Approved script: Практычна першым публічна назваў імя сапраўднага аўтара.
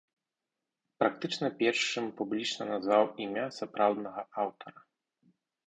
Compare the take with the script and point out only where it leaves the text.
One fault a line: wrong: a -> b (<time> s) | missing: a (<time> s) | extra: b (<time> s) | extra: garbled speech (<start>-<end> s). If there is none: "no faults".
no faults